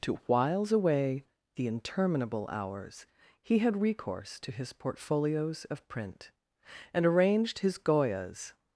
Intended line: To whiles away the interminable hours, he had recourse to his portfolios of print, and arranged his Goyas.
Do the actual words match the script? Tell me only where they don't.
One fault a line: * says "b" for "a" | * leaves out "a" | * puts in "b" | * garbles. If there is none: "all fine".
all fine